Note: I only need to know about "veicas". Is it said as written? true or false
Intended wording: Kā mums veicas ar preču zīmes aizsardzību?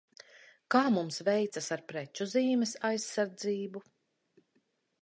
true